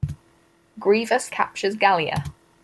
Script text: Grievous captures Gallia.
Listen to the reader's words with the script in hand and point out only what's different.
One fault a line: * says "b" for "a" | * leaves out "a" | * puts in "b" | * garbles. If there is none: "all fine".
all fine